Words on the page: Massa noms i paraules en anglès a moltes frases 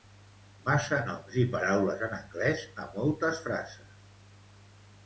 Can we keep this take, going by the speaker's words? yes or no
yes